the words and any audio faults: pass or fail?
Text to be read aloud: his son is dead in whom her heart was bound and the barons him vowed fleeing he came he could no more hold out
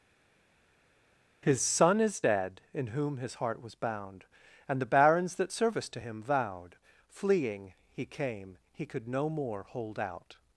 fail